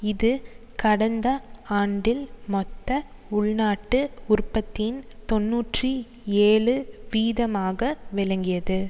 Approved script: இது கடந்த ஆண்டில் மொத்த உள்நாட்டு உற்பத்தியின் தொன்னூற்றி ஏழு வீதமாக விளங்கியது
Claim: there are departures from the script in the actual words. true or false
false